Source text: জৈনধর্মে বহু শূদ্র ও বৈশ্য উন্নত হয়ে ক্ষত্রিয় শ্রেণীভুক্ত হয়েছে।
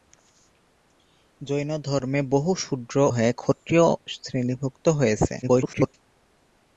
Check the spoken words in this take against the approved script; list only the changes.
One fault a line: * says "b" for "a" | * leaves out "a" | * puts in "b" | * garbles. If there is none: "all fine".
* leaves out "ও বৈশ্য উন্নত"
* garbles